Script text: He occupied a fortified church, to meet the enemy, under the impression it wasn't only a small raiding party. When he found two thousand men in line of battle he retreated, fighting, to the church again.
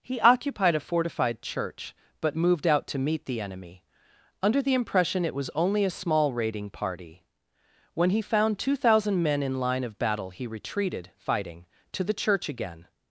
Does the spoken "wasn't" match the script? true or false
false